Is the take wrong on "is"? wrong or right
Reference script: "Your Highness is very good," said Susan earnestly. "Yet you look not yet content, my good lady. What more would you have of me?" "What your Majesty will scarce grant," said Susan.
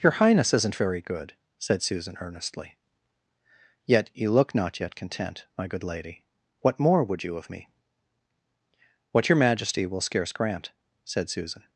wrong